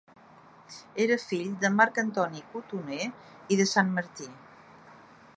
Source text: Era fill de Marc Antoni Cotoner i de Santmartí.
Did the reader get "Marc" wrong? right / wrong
right